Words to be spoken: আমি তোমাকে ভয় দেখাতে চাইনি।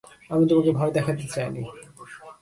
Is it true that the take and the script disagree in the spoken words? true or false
false